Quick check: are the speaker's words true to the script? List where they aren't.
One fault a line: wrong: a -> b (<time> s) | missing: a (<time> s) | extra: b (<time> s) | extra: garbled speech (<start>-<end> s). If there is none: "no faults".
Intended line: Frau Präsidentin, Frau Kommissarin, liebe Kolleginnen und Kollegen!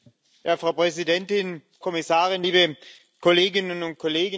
missing: Frau (1.6 s)